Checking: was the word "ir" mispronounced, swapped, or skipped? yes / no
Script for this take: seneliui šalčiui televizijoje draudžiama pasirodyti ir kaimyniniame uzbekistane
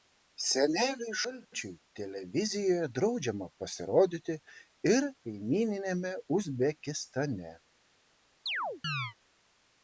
no